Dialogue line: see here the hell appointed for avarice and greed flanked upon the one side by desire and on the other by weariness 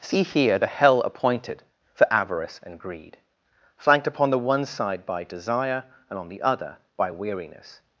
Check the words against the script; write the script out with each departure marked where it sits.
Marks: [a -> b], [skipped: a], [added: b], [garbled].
see here the hell appointed for avarice and greed flanked upon the one side by desire and on the other by weariness